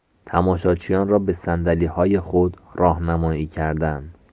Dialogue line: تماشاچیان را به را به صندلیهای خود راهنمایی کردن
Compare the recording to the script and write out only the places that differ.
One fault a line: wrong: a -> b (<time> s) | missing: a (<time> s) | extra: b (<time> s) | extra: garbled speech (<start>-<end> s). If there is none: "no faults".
missing: را به (1.3 s)